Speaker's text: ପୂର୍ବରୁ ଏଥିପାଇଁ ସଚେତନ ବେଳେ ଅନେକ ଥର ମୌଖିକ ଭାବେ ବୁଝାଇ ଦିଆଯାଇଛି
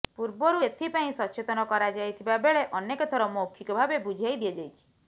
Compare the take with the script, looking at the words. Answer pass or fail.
fail